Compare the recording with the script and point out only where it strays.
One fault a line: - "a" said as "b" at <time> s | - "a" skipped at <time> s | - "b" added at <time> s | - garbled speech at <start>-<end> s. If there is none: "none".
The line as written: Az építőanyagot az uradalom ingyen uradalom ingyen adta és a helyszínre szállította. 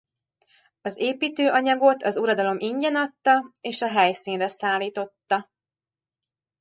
- "uradalom ingyen" skipped at 3.0 s